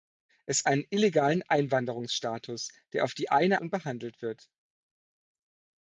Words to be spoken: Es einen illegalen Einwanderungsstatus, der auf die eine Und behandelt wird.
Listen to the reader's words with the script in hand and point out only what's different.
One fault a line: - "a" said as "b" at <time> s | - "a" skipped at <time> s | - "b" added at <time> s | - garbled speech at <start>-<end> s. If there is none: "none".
none